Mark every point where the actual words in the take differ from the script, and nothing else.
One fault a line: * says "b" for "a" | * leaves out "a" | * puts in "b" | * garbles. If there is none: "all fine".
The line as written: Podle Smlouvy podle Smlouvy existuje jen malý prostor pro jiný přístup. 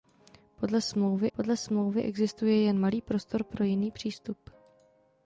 all fine